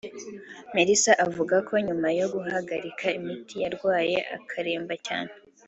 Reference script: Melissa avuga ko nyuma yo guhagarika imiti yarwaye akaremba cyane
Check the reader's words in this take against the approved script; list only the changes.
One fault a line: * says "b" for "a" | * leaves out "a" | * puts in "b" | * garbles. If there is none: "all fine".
all fine